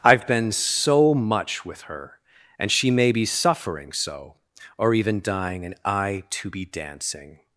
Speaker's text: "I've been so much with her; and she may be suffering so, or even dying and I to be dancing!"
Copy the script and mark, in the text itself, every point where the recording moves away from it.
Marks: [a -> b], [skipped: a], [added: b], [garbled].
"I've been so much with her; and she may be suffering so, or even dying and I to be dancing!"